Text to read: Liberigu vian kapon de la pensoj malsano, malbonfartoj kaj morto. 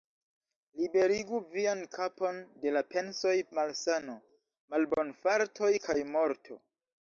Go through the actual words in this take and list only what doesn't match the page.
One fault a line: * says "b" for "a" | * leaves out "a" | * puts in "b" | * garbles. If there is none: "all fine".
all fine